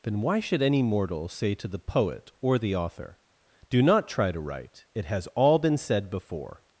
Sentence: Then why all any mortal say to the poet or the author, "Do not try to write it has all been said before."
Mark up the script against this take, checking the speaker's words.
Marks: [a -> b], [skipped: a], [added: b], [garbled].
Then why [all -> should] any mortal say to the poet or the author, "Do not try to write it has all been said before."